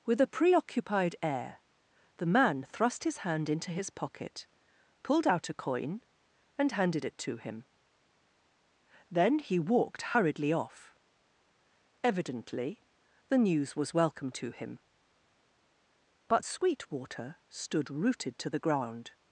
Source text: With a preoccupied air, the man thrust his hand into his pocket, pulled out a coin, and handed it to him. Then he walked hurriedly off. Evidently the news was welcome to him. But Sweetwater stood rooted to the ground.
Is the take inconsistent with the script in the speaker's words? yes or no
no